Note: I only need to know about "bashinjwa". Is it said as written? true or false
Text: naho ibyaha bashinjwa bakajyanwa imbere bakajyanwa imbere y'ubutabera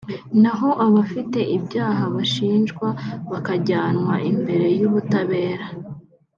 true